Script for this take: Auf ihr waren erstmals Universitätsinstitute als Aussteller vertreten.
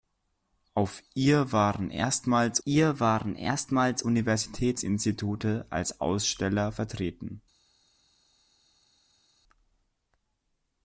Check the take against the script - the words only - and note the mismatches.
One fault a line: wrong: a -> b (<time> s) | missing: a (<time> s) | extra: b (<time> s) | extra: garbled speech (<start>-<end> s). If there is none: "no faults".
extra: ihr waren erstmals (2.6 s)